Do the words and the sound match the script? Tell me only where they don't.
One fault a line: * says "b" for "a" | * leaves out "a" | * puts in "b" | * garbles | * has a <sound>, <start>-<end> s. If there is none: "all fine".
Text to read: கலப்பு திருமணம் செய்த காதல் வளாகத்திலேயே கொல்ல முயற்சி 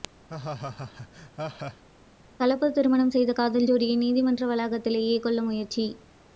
* has a laugh, 0.3-1.8 s
* puts in "ஜோடியை நீதிமன்ற"